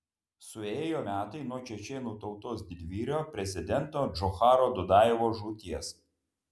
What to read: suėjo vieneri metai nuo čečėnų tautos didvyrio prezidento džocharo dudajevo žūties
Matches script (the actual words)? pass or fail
fail